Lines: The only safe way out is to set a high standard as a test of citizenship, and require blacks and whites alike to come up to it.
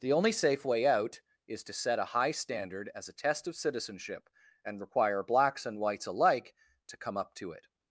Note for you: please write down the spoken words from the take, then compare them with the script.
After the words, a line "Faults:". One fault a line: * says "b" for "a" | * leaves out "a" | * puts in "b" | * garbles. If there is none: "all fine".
The only safe way out is to set a high standard as a test of citizenship, and require blacks and whites alike to come up to it.
Faults:
all fine